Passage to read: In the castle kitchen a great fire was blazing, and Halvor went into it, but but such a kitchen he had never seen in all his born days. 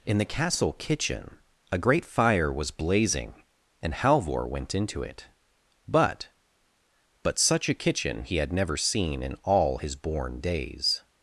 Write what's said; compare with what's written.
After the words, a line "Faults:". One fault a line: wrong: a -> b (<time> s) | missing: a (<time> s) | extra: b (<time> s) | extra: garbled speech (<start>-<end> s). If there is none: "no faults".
In the castle kitchen a great fire was blazing, and Halvor went into it, but but such a kitchen he had never seen in all his born days.
Faults:
no faults